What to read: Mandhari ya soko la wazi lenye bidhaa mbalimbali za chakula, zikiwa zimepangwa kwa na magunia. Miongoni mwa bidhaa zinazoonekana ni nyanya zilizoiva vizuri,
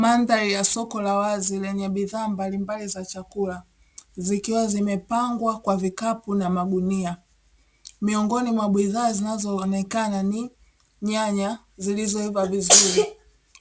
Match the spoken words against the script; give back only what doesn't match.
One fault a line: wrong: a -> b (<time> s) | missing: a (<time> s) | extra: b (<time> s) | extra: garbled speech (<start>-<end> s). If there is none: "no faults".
extra: vikapu (5.8 s)